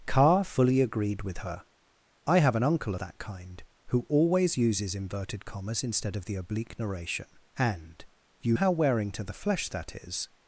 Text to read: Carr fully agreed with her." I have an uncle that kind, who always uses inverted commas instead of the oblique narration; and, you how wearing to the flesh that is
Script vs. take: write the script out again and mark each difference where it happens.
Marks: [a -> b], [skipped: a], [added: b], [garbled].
Carr fully agreed with her." I have an uncle that kind, who always uses inverted commas instead of the oblique narration; and, you how wearing to the flesh that is